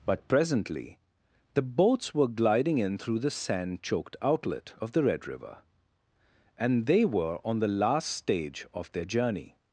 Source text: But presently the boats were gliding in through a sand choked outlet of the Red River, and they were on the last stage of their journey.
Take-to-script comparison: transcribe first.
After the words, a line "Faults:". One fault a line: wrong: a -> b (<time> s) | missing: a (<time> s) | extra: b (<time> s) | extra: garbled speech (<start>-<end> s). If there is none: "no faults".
But presently the boats were gliding in through the sand choked outlet of the Red River, and they were on the last stage of their journey.
Faults:
wrong: a -> the (3.2 s)